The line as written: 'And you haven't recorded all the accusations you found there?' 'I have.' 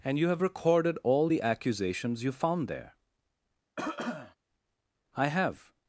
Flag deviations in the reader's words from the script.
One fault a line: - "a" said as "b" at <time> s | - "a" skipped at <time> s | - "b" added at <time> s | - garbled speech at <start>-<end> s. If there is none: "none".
- "haven't" said as "have" at 0.3 s